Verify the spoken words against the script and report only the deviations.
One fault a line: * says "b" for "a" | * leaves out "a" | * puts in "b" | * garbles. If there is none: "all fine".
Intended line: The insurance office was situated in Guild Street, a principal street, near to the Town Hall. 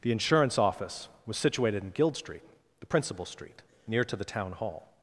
* says "the" for "a"